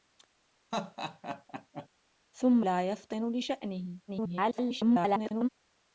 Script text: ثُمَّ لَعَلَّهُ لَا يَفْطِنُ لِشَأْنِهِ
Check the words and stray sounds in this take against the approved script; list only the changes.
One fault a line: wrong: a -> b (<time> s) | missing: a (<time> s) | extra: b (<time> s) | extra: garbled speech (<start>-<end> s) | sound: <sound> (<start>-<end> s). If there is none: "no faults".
sound: laugh (0.7-1.9 s)
missing: لَعَلَّهُ (2.7 s)
extra: garbled speech (4.1-5.5 s)